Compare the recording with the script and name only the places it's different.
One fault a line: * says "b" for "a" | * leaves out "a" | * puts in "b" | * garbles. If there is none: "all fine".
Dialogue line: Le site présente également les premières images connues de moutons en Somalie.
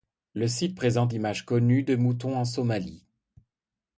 * leaves out "également les premières"